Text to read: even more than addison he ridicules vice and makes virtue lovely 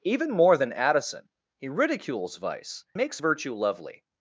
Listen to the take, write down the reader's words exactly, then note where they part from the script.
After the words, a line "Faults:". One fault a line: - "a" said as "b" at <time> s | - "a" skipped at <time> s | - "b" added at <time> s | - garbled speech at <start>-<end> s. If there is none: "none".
even more than addison he ridicules vice makes virtue lovely
Faults:
- "and" skipped at 2.9 s